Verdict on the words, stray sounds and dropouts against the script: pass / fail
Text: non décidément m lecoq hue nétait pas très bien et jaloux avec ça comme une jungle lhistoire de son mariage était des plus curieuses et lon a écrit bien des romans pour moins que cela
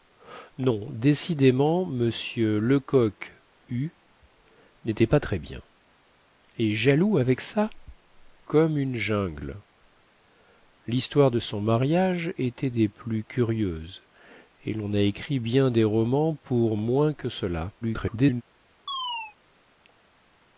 fail